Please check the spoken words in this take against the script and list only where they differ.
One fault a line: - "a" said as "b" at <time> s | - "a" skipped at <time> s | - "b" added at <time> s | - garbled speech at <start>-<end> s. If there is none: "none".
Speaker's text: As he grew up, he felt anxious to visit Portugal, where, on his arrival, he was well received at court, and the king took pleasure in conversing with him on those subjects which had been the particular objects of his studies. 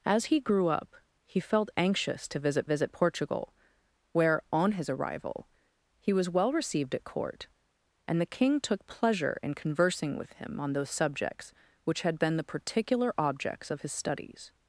- "visit" added at 2.6 s